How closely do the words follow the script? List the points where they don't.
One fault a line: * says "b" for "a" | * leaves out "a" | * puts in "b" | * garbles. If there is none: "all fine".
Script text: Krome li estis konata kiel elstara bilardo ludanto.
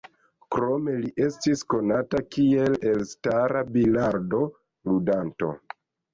all fine